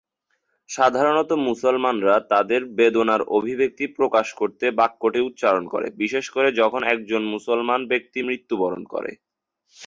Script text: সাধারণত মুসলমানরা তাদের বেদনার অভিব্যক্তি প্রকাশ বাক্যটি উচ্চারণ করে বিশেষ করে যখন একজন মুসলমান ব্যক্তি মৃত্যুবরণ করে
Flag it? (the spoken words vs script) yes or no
yes